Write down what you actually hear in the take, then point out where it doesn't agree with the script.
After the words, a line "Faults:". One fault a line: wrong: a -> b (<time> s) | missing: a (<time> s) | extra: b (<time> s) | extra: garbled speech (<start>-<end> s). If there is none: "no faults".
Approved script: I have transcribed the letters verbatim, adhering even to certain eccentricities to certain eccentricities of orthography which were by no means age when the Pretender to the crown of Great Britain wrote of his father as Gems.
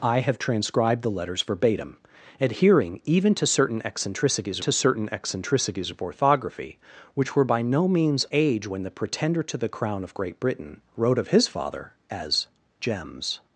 I have transcribed the letters verbatim, adhering even to certain eccentricities to certain eccentricities of orthography which were by no means age when the Pretender to the crown of Great Britain wrote of his father as Gems.
Faults:
no faults